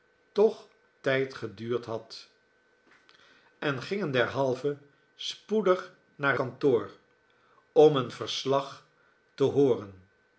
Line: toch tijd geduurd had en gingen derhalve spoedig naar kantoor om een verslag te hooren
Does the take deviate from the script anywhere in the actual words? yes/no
no